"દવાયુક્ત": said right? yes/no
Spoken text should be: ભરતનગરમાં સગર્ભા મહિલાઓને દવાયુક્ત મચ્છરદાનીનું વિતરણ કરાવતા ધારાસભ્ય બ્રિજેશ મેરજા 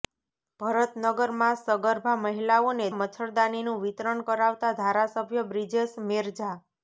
no